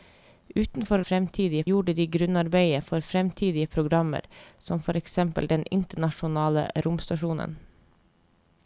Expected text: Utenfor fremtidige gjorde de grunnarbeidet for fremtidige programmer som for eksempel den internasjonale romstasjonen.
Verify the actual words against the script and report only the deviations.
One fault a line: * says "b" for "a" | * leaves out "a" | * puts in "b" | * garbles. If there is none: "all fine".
all fine